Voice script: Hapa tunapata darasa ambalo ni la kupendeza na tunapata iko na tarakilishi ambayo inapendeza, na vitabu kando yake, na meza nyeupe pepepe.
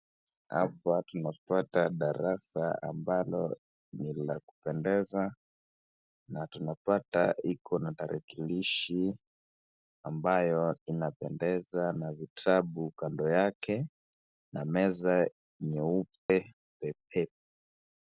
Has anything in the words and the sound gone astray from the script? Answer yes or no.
yes